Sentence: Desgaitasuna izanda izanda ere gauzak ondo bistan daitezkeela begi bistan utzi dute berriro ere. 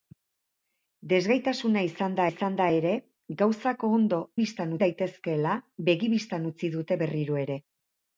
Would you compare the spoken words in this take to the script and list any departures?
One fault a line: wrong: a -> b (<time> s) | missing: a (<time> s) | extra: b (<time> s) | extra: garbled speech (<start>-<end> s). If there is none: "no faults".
no faults